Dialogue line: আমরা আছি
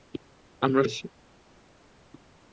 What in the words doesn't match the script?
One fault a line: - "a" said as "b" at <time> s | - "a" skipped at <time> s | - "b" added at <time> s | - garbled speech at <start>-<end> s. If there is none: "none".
none